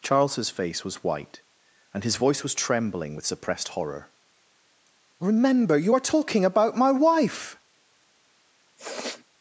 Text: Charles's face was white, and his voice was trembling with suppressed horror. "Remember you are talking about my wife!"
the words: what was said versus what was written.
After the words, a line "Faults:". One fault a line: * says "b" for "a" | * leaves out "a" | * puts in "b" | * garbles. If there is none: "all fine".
Charles's face was white, and his voice was trembling with suppressed horror. "Remember you are talking about my wife!"
Faults:
all fine